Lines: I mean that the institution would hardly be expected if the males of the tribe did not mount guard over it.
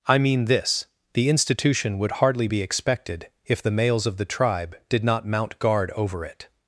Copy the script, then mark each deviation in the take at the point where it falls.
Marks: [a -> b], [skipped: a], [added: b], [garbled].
I mean [that -> this] the institution would hardly be expected if the males of the tribe did not mount guard over it.